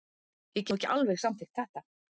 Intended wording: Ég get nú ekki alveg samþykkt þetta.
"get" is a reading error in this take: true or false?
true